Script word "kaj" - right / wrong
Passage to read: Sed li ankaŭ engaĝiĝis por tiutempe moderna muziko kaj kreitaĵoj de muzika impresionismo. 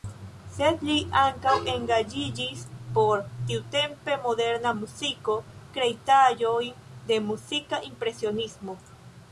wrong